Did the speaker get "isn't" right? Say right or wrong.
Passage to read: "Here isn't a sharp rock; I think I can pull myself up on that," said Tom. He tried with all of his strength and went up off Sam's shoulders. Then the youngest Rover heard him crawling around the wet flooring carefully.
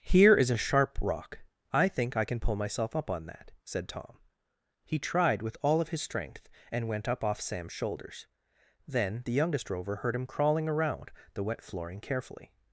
wrong